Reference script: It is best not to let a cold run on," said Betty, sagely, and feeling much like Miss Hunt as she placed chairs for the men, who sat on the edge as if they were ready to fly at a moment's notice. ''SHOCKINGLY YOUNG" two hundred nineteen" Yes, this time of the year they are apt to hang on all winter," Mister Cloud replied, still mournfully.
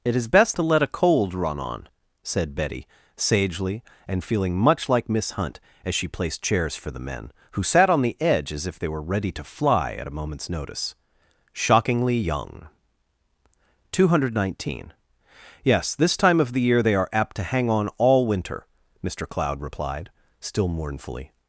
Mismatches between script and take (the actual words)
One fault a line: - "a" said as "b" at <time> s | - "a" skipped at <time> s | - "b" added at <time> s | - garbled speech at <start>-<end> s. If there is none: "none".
- "not" skipped at 0.6 s